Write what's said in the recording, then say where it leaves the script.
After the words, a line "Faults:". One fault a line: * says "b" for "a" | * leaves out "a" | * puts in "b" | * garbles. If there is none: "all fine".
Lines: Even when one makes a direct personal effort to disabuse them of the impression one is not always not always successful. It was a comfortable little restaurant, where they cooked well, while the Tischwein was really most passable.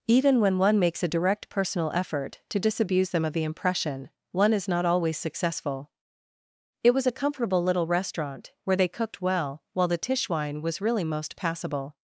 Even when one makes a direct personal effort to disabuse them of the impression one is not always successful. It was a comfortable little restaurant, where they cooked well, while the Tischwein was really most passable.
Faults:
* leaves out "not always"